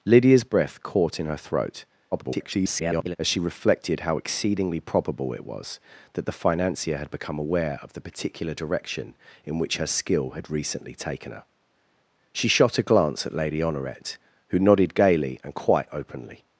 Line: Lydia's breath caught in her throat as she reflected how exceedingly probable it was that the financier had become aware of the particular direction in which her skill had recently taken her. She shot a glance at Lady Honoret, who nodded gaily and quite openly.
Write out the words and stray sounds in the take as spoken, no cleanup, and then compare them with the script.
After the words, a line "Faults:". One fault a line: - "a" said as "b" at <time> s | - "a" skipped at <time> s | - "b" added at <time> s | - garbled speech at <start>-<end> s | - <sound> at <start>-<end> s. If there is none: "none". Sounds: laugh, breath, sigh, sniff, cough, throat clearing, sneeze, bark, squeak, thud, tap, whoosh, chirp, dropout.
Lydia's breath caught in her throat [garbled] as she reflected how exceedingly probable it was that the financier had become aware of the particular direction in which her skill had recently taken her. She shot a glance at Lady Honoret, who nodded gaily and quite openly.
Faults:
- garbled speech at 2.1-3.2 s